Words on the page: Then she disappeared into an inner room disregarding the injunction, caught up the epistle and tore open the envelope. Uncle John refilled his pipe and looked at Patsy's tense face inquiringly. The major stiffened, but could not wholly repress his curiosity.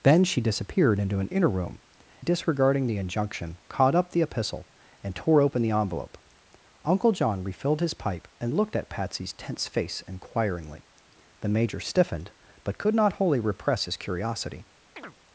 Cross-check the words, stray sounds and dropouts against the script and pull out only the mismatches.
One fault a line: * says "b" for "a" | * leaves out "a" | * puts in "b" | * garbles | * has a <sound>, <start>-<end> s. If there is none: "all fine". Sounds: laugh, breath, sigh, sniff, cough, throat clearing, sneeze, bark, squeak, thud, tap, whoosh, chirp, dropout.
* has a chirp, 15.0-15.2 s